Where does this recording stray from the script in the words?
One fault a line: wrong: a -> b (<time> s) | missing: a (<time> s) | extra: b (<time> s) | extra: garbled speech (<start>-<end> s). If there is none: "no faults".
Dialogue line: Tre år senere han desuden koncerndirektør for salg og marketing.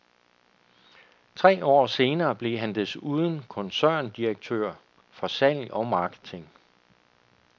extra: blev (2.4 s)